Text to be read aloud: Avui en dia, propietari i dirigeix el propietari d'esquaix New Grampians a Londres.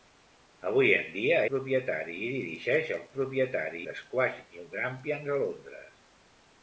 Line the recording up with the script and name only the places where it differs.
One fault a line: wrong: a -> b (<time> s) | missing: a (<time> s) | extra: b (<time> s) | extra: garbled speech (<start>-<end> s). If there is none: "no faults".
no faults